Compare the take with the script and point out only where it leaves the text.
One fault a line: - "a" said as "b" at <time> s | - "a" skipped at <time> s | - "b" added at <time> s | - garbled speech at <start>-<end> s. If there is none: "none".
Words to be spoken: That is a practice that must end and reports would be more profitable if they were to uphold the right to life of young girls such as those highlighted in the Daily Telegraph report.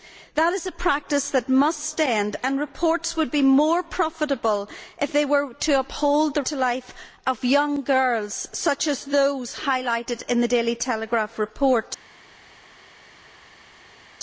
- "right" skipped at 6.4 s